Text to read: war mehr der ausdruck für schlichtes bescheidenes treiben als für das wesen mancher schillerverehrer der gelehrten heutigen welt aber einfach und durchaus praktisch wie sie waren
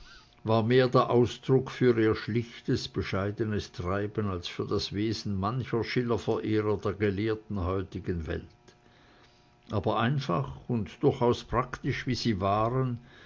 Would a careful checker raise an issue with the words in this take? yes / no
yes